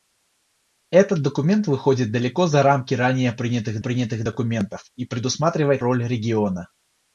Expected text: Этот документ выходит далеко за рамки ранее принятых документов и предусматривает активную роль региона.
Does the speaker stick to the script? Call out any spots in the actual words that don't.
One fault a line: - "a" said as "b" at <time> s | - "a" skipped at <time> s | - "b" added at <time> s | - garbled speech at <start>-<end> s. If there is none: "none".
- "принятых" added at 3.8 s
- "активную" skipped at 5.8 s